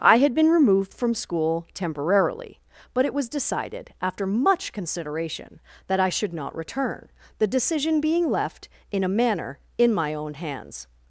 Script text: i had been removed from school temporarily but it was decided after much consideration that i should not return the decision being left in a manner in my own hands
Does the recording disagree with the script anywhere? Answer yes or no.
no